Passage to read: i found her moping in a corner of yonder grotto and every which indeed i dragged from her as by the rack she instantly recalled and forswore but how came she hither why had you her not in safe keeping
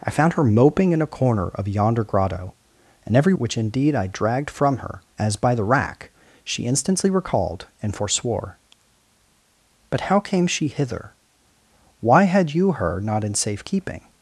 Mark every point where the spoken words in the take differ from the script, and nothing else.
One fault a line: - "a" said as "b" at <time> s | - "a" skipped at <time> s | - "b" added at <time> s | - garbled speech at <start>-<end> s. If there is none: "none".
none